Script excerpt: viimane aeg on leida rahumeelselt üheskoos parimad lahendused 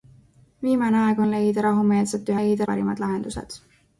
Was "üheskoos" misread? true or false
true